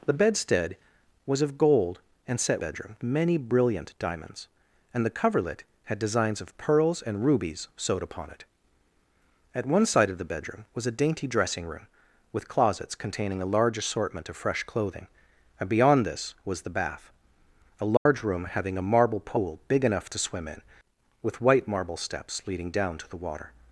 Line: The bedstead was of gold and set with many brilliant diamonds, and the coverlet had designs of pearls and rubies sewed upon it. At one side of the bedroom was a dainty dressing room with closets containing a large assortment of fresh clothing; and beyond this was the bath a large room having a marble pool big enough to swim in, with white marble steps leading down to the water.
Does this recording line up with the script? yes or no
no